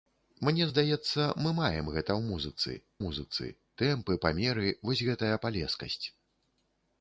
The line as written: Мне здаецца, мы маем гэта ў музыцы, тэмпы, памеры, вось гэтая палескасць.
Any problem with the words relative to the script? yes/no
yes